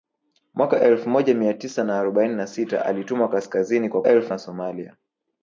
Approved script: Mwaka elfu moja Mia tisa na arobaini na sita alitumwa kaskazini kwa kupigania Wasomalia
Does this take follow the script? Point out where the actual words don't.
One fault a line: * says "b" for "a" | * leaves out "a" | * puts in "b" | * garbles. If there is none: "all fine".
* says "elfu" for "kupigania"